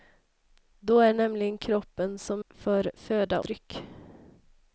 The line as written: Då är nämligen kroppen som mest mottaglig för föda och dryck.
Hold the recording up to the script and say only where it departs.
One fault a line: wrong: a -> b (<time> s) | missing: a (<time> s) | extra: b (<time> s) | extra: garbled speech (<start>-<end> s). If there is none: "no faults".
missing: mest mottaglig (2.4 s)
missing: och (3.4 s)